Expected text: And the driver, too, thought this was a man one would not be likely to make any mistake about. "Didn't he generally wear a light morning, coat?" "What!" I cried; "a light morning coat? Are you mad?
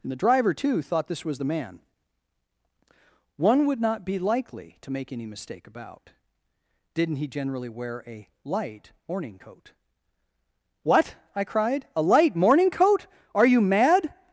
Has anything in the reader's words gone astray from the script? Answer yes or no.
yes